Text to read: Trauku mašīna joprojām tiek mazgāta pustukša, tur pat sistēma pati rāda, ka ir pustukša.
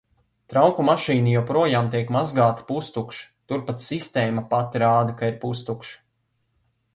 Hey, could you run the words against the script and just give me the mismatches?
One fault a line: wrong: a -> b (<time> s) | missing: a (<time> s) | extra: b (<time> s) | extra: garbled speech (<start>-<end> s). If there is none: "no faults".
no faults